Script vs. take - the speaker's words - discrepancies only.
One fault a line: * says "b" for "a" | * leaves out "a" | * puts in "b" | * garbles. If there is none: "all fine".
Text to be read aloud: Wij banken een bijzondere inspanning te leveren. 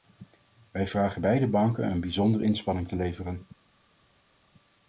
* puts in "vragen beide"